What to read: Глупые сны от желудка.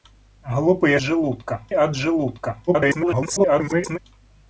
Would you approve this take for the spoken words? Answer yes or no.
no